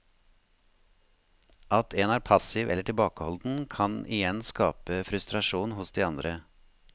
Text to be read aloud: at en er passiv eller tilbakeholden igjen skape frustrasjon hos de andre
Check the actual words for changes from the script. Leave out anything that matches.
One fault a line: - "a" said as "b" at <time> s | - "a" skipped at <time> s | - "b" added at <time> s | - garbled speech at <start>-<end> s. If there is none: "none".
- "kan" added at 3.7 s